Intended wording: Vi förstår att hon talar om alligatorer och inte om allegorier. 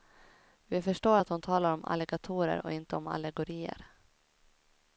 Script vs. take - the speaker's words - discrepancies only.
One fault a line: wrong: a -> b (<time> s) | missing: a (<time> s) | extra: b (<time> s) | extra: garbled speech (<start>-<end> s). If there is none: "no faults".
no faults